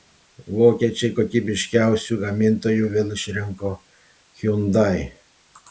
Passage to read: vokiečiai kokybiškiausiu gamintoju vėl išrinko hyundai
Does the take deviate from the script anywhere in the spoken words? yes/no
no